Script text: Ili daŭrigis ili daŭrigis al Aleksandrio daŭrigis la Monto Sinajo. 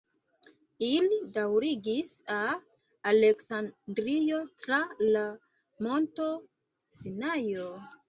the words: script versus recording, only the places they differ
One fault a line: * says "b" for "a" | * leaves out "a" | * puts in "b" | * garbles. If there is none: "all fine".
* leaves out "ili daŭrigis"
* says "tra" for "daŭrigis"